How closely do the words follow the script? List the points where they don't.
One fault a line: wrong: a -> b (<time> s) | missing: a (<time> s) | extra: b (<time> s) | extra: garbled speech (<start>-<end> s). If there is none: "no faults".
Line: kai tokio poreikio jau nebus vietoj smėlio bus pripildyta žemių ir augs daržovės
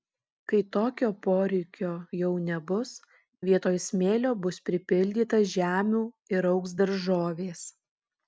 no faults